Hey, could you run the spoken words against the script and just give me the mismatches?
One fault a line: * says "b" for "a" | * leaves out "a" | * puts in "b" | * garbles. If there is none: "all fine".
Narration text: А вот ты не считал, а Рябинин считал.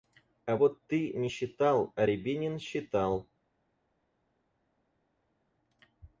all fine